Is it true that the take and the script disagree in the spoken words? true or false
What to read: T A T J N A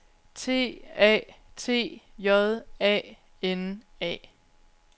true